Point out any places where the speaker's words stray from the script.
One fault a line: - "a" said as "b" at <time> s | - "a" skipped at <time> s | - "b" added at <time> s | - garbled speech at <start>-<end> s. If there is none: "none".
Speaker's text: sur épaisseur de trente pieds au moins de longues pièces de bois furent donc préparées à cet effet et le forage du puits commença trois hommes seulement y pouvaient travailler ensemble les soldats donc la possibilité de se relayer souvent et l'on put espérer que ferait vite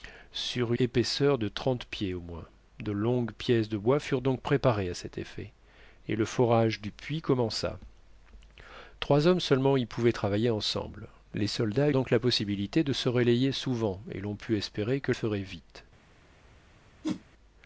none